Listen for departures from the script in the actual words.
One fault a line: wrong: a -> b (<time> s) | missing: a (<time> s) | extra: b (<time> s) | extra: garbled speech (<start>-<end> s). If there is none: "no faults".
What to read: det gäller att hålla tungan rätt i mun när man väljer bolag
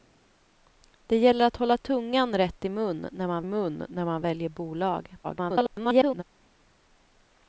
extra: mun när man (3.4 s)
extra: garbled speech (5.2-6.2 s)